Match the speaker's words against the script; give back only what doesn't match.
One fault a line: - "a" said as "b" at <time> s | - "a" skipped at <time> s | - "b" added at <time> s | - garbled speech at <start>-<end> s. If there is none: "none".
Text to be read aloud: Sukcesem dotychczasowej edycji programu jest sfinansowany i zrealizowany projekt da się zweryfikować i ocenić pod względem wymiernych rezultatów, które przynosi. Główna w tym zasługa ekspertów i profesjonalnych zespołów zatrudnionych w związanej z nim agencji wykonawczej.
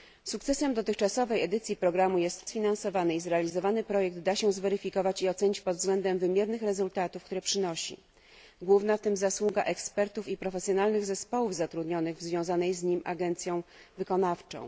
none